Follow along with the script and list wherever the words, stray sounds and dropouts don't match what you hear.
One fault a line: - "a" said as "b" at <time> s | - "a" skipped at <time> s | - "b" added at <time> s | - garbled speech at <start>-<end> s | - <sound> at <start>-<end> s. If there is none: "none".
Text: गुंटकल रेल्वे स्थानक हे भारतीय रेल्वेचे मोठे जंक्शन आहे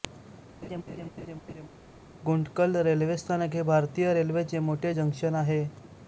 - laugh at 0.6-1.7 s